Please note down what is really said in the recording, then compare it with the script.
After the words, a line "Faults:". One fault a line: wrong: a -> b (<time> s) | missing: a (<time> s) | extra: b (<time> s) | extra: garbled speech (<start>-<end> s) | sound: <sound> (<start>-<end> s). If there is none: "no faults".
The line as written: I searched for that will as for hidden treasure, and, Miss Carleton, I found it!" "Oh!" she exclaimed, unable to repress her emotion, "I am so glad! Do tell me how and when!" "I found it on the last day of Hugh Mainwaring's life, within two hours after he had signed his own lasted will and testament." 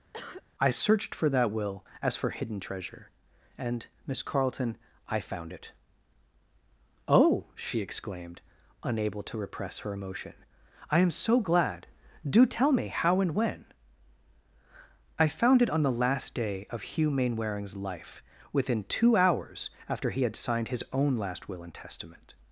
I searched for that will as for hidden treasure, and, Miss Carleton, I found it!" "Oh!" she exclaimed, unable to repress her emotion, "I am so glad! Do tell me how and when!" "I found it on the last day of Hugh Mainwaring's life, within two hours after he had signed his own last will and testament."
Faults:
sound: cough (0.1-0.4 s)
wrong: lasted -> last (21.2 s)